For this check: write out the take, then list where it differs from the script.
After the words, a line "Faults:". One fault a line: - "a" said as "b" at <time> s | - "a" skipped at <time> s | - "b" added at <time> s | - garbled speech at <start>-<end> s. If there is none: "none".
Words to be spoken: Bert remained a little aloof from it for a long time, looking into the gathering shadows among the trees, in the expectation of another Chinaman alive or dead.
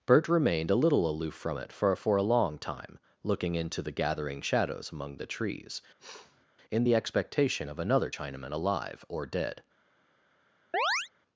Bert remained a little aloof from it for for a long time, looking into the gathering shadows among the trees, in the expectation of another Chinaman alive or dead.
Faults:
- "for" added at 1.9 s